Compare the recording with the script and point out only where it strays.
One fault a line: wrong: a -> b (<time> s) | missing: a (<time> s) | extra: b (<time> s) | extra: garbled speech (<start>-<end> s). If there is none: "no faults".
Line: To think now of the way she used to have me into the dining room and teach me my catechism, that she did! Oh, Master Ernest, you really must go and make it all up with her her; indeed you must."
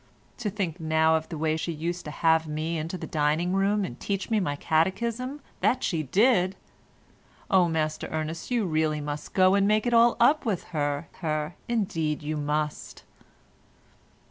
no faults